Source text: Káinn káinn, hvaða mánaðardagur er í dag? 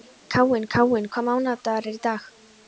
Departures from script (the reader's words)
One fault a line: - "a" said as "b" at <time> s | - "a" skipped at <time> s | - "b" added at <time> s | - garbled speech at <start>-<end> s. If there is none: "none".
none